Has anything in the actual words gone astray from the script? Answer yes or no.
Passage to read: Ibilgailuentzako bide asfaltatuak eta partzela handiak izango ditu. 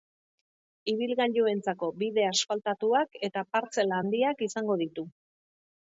no